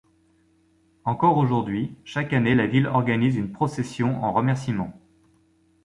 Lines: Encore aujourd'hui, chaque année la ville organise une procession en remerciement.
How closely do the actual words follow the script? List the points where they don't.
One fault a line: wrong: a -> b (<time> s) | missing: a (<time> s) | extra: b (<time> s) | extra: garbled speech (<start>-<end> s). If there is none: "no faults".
no faults